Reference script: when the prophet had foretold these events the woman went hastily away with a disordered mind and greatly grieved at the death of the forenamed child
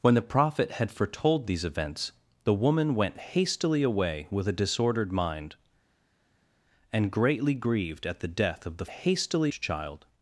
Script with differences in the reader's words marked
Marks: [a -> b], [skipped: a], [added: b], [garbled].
when the prophet had foretold these events the woman went hastily away with a disordered mind and greatly grieved at the death of the [forenamed -> hastily] child